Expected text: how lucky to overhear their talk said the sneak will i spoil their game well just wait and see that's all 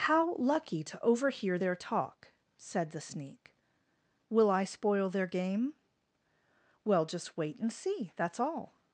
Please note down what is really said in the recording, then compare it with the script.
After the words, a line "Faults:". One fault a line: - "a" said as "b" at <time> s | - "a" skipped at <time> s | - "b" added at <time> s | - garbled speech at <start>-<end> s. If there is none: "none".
how lucky to overhear their talk said the sneak will i spoil their game well just wait and see that's all
Faults:
none